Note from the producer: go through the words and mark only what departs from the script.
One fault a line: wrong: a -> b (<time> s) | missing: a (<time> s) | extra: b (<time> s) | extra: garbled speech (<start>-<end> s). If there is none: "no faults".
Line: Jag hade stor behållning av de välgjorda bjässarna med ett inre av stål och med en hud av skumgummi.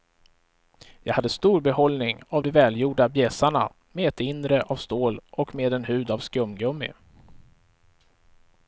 no faults